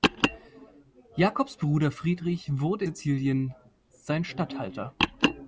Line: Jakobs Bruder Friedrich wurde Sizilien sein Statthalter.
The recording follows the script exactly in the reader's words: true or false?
true